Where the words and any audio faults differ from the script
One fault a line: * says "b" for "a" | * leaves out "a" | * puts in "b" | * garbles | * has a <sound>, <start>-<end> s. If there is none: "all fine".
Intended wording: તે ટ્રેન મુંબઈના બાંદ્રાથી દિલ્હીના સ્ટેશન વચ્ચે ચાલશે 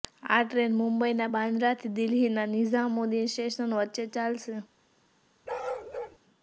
* says "આ" for "તે"
* puts in "નિઝામુદ્દીન"
* has a bark, 5.5-6.2 s